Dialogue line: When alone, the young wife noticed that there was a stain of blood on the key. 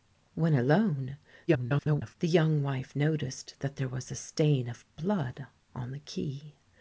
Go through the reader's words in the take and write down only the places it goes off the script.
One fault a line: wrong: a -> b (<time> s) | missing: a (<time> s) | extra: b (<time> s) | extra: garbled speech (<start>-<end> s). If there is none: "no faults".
extra: garbled speech (1.5-2.2 s)